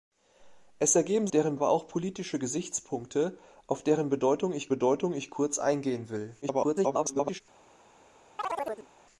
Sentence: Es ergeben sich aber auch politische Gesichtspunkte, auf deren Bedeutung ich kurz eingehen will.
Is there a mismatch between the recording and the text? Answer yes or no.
yes